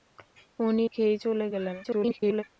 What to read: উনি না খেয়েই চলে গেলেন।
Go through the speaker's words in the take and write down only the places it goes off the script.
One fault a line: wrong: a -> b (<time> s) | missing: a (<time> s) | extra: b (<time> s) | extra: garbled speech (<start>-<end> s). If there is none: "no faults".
missing: না (0.8 s)
extra: garbled speech (1.8-2.4 s)